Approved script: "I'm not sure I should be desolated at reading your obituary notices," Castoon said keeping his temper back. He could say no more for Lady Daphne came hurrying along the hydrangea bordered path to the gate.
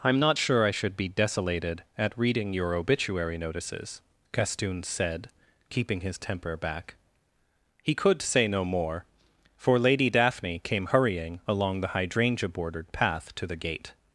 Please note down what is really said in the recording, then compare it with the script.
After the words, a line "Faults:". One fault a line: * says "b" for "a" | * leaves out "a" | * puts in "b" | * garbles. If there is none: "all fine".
"I'm not sure I should be desolated at reading your obituary notices," Castoon said keeping his temper back. He could say no more for Lady Daphne came hurrying along the hydrangea bordered path to the gate.
Faults:
all fine